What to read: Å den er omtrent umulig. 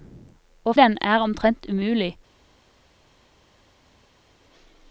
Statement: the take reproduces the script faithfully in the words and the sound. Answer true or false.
true